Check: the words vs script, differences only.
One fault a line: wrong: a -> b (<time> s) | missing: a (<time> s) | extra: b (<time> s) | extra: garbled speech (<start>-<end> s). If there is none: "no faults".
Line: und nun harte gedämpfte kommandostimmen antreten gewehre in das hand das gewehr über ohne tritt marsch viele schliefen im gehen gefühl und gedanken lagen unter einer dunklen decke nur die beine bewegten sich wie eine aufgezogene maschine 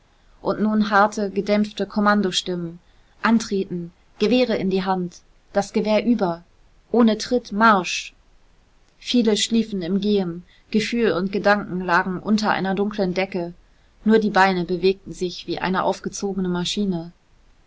wrong: das -> die (4.7 s)